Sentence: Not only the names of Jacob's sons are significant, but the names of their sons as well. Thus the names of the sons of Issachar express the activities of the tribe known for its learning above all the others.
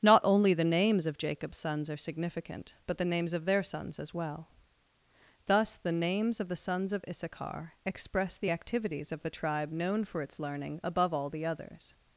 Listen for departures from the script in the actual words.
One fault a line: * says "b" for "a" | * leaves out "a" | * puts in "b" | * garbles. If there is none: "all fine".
all fine